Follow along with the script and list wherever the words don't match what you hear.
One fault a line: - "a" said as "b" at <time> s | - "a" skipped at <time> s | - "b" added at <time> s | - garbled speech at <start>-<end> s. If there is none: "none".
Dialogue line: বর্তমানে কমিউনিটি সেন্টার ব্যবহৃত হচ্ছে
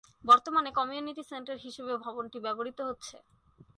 - "হিসেবে ভবনটি" added at 1.6 s